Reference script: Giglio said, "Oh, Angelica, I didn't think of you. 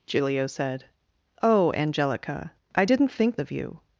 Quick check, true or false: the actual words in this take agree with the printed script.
true